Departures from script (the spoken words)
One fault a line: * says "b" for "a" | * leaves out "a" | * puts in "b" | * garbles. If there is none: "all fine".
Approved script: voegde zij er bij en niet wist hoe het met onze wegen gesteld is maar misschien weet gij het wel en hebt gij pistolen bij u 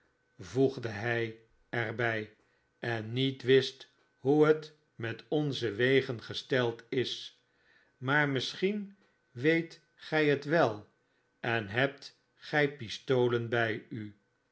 * says "hij" for "zij"